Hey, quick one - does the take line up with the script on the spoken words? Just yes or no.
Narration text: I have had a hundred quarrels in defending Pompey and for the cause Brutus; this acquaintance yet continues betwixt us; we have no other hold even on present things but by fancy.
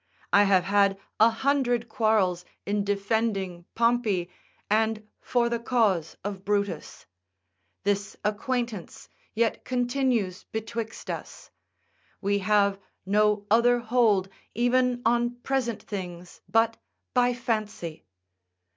no